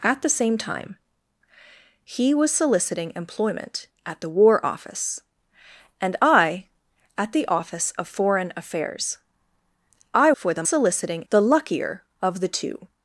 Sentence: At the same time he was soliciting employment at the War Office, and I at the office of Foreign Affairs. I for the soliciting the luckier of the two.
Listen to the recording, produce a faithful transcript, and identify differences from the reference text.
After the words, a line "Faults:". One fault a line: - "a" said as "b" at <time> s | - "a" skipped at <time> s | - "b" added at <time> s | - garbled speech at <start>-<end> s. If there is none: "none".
At the same time he was soliciting employment at the War Office, and I at the office of Foreign Affairs. I for the soliciting the luckier of the two.
Faults:
none